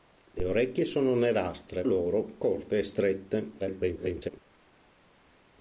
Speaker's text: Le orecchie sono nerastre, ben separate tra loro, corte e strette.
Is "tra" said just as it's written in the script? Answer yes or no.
no